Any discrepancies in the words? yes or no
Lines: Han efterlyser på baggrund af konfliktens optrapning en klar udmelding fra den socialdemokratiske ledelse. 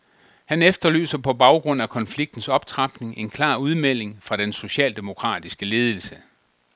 no